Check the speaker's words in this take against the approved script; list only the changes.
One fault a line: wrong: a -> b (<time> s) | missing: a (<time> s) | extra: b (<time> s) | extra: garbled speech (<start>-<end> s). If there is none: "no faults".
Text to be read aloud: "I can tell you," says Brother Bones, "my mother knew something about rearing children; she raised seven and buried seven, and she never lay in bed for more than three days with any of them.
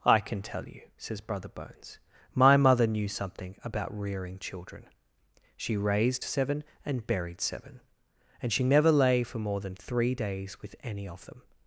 missing: in bed (9.2 s)